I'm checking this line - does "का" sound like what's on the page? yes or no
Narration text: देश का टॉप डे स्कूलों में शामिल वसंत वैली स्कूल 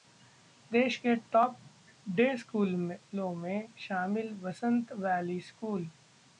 no